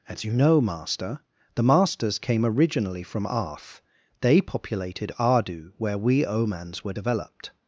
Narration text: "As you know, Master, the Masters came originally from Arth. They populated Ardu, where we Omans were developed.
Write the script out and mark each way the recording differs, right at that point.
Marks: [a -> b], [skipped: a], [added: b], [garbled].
"As you know, Master, the Masters came originally from Arth. They populated Ardu, where we Omans were developed.